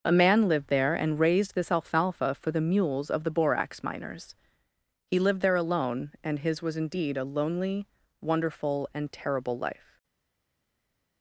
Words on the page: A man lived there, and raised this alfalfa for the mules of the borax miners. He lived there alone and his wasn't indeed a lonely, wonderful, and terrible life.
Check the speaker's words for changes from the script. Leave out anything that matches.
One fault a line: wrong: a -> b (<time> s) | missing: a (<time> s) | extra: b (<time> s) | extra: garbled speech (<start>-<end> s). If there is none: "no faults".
wrong: wasn't -> was (6.6 s)